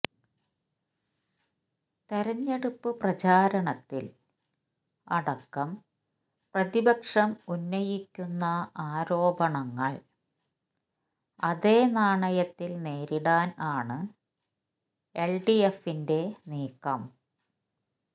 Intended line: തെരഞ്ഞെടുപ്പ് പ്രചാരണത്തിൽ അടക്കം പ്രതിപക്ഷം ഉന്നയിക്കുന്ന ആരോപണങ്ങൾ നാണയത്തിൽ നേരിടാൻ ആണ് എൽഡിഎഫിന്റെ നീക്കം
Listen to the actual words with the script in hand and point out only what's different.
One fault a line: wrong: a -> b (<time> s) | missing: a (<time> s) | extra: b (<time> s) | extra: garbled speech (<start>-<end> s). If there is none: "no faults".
extra: അതേ (11.4 s)